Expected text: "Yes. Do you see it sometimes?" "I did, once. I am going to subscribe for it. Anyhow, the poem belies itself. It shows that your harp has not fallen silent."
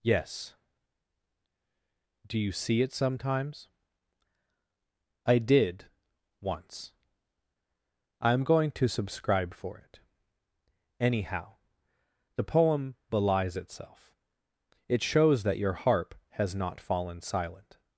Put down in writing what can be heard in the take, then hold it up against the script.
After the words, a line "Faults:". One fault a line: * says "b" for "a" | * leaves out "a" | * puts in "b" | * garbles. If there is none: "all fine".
"Yes. Do you see it sometimes?" "I did, once. I am going to subscribe for it. Anyhow, the poem belies itself. It shows that your harp has not fallen silent."
Faults:
all fine